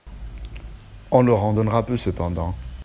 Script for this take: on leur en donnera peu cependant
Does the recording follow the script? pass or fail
pass